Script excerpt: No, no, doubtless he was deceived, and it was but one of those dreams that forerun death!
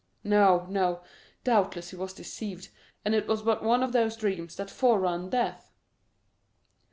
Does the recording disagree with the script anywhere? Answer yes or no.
no